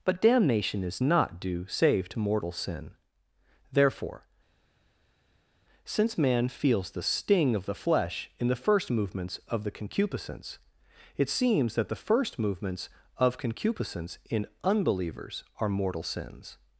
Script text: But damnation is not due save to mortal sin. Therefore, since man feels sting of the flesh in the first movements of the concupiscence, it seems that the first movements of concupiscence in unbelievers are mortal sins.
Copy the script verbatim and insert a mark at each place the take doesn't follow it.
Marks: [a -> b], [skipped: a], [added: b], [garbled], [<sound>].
But damnation is not due save to mortal sin. Therefore, since man feels [added: the] sting of the flesh in the first movements of the concupiscence, it seems that the first movements of concupiscence in unbelievers are mortal sins.